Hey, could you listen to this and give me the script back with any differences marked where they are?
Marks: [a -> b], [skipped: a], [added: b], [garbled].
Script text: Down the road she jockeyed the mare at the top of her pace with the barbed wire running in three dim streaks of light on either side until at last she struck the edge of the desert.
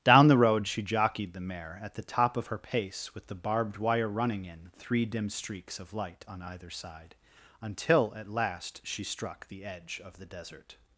Down the road she jockeyed the mare at the top of her pace with the barbed wire running in three dim streaks of light on either side until at last she struck the edge of the desert.